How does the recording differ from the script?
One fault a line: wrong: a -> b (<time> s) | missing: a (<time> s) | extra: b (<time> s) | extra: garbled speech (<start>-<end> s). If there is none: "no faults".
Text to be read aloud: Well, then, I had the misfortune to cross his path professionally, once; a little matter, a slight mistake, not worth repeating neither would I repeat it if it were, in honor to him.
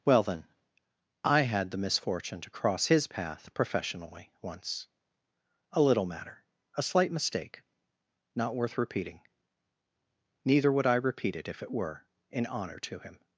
no faults